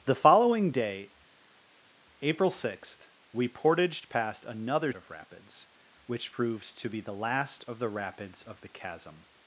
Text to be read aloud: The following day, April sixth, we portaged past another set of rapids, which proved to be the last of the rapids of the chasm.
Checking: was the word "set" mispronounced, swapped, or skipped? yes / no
yes